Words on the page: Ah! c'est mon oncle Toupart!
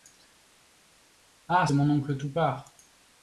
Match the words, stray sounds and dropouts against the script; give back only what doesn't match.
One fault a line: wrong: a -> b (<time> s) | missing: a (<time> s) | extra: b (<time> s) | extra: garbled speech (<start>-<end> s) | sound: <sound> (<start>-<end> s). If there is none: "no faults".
missing: c'est (1.7 s)